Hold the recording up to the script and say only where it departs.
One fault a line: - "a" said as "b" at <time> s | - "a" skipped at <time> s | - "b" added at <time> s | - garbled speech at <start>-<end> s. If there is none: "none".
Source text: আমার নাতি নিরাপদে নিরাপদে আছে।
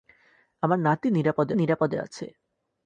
none